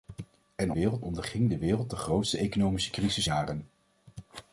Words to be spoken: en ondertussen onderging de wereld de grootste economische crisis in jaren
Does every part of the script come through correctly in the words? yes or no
no